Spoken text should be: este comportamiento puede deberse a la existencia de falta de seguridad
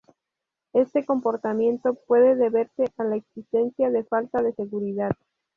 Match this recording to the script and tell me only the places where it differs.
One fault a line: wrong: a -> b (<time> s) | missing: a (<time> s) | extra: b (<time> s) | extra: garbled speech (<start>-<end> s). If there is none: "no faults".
no faults